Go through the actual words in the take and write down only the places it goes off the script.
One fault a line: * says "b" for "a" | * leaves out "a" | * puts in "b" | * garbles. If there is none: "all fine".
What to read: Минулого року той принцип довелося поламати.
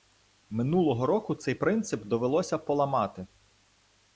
* says "цей" for "той"